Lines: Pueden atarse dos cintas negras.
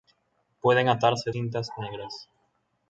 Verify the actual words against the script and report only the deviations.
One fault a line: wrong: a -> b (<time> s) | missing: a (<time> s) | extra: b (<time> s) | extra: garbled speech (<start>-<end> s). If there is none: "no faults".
missing: dos (1.3 s)